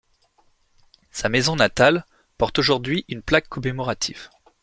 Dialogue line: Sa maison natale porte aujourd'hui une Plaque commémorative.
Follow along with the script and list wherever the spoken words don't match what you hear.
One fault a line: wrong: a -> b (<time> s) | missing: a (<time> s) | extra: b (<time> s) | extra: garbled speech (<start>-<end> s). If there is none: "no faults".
no faults